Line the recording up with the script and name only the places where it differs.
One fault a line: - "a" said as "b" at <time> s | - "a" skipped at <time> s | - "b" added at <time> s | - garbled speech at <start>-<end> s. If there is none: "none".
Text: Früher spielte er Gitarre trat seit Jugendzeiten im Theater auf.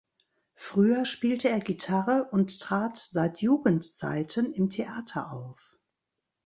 - "und" added at 2.3 s